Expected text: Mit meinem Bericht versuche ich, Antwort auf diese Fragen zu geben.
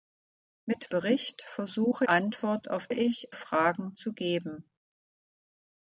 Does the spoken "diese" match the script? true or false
false